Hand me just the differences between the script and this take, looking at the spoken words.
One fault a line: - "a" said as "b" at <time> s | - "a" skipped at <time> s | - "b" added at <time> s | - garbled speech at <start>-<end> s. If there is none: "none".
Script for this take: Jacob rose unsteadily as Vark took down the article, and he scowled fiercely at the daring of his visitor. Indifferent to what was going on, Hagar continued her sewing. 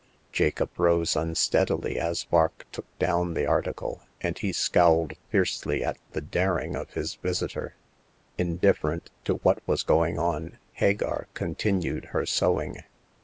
none